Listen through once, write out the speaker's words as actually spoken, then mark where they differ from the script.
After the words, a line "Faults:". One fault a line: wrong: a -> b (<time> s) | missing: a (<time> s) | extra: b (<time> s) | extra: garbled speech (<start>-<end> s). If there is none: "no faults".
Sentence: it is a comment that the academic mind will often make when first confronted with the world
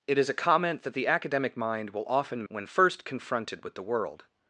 it is a comment that the academic mind will often when first confronted with the world
Faults:
missing: make (2.4 s)